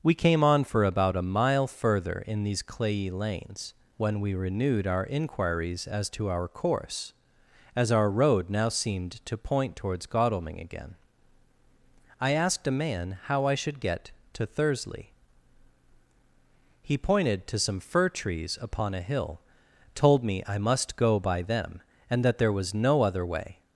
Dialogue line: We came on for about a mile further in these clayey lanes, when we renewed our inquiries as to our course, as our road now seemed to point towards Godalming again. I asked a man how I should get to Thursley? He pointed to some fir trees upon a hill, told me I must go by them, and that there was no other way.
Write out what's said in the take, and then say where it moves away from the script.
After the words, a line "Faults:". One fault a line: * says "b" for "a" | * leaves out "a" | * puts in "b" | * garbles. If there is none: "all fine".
We came on for about a mile further in these clayey lanes, when we renewed our inquiries as to our course, as our road now seemed to point towards Godalming again. I asked a man how I should get to Thursley? He pointed to some fir trees upon a hill, told me I must go by them, and that there was no other way.
Faults:
all fine